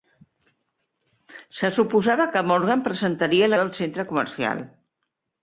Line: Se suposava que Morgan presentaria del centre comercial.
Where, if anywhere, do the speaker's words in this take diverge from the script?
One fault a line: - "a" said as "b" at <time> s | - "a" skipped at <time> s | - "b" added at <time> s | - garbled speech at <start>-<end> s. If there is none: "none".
none